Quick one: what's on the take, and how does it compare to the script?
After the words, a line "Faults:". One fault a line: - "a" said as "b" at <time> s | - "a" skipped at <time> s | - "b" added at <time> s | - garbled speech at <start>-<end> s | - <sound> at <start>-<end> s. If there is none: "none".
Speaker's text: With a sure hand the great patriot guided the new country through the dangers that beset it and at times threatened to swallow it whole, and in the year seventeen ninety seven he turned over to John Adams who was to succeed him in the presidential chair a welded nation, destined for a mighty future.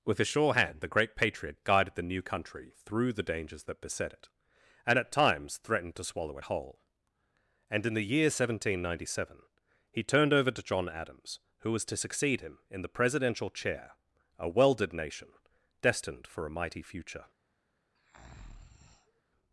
With a sure hand the great patriot guided the new country through the dangers that beset it and at times threatened to swallow it whole, and in the year seventeen ninety seven he turned over to John Adams who was to succeed him in the presidential chair a welded nation, destined for a mighty future.
Faults:
- breath at 17.9-19.2 s